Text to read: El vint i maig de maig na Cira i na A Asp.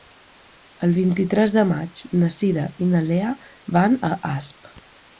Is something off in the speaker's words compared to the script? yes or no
yes